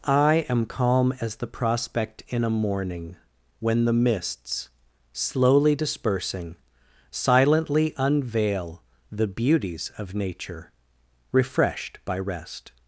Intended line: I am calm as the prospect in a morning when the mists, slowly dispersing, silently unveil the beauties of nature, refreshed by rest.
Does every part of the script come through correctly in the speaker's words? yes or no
yes